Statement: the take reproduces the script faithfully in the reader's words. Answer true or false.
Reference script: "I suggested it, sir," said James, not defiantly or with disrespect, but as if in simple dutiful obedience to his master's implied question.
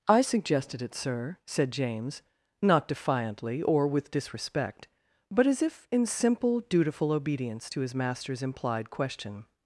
true